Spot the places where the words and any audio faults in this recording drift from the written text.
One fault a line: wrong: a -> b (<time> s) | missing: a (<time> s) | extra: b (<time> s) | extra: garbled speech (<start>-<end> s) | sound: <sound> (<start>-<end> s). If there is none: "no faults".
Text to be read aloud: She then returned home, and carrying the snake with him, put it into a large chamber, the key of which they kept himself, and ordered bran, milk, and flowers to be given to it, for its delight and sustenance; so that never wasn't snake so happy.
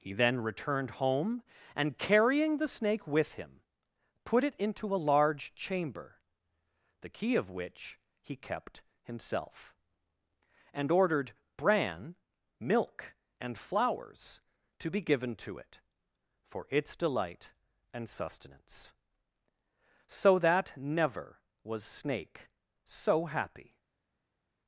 wrong: She -> He (0.0 s)
wrong: they -> he (8.2 s)
wrong: wasn't -> was (21.6 s)